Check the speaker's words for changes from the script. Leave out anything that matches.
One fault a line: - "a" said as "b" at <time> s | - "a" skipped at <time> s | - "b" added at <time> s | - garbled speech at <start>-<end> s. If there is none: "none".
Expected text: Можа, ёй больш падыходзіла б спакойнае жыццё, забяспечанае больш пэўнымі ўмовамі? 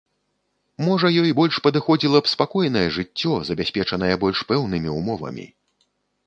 none